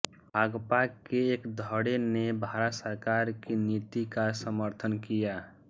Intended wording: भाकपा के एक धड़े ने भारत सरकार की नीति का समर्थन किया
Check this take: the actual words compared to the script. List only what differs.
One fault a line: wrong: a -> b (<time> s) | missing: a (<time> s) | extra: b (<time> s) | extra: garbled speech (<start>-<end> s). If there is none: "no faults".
no faults